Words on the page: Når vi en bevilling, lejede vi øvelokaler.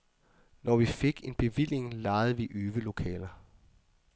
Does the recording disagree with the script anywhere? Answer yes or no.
yes